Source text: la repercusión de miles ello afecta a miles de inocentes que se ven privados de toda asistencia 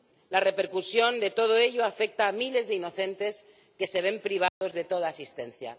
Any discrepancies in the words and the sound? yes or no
yes